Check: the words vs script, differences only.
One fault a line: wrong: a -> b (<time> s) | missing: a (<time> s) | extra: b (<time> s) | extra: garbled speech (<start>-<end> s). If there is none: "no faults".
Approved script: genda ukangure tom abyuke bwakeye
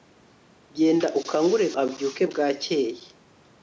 missing: tom (1.7 s)